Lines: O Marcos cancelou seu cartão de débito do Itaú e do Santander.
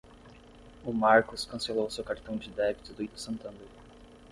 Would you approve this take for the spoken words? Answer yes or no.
no